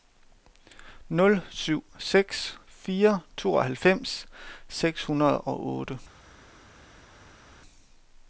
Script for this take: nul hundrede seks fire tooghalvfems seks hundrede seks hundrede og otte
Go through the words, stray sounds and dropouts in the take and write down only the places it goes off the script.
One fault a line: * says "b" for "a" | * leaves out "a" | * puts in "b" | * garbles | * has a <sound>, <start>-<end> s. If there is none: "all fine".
* says "syv" for "hundrede"
* leaves out "seks hundrede"